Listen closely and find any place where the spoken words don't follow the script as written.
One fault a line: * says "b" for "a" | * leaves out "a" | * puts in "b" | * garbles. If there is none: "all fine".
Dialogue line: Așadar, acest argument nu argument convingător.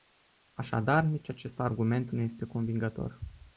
* puts in "nici"
* says "este" for "argument"